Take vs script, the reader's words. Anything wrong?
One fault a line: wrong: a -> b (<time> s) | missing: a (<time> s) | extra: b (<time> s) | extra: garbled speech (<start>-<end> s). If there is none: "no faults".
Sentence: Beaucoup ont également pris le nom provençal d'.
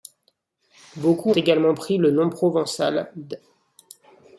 missing: ont (1.3 s)